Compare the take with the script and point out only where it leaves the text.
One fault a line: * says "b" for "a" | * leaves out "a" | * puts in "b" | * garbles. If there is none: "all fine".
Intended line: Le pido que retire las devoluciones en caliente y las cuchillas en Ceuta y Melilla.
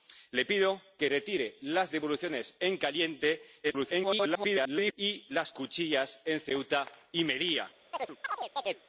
* garbles